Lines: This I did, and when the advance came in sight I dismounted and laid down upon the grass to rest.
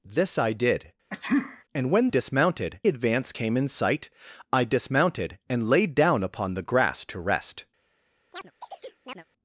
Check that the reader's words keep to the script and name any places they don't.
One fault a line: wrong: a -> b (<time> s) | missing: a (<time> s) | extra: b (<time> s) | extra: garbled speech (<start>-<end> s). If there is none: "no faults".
wrong: the -> dismounted (2.1 s)